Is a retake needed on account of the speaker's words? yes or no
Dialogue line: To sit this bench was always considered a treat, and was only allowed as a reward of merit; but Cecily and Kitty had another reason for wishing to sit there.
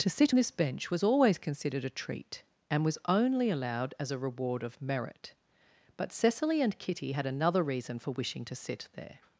no